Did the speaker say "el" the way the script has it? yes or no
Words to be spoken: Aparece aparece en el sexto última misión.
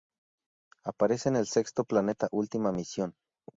yes